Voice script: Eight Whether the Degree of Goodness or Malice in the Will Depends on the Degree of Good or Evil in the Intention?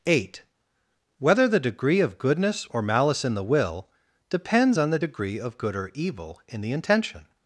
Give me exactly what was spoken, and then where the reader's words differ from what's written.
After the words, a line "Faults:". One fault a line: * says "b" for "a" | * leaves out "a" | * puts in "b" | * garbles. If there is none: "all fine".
Eight Whether the Degree of Goodness or Malice in the Will Depends on the Degree of Good or Evil in the Intention?
Faults:
all fine